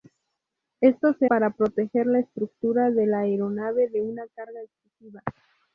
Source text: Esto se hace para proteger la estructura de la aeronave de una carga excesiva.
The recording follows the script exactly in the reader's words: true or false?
false